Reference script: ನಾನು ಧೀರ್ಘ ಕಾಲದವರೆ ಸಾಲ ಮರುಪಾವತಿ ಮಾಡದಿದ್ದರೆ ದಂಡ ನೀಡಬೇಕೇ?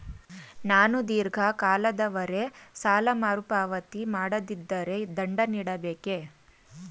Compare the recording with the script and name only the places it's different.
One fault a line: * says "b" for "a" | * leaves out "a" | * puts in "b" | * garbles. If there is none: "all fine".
all fine